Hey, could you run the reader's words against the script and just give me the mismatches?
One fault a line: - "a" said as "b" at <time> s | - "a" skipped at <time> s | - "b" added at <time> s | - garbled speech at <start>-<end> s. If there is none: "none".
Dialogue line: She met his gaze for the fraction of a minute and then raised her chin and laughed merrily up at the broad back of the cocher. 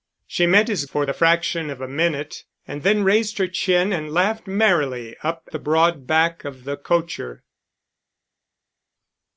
- "gaze" skipped at 0.9 s
- "at" skipped at 5.5 s